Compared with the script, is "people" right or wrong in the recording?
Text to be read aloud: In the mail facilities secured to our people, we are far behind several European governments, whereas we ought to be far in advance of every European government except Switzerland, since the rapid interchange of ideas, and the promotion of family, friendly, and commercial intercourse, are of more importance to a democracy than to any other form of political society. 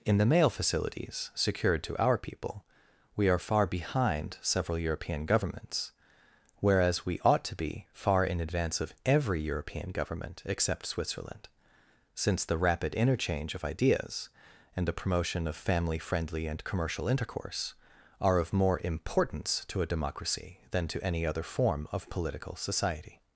right